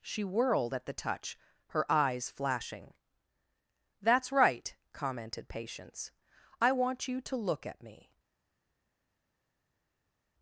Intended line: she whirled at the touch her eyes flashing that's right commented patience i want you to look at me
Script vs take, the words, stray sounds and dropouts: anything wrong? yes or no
no